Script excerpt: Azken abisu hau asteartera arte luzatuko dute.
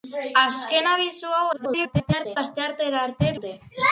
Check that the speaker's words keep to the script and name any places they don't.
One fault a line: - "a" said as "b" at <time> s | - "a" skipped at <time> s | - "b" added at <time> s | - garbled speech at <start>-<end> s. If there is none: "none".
- garbled speech at 1.5-2.4 s
- "luzatuko" skipped at 3.3 s